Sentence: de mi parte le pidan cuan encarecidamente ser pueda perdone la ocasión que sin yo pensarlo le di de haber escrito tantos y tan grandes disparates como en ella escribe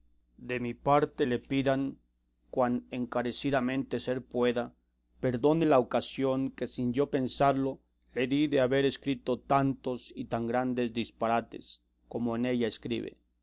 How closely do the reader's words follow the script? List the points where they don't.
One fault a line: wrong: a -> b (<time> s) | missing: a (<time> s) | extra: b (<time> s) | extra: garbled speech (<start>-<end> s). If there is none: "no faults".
no faults